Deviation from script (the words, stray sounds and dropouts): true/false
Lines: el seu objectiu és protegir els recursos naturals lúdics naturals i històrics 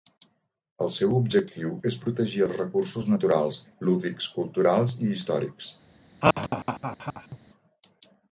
true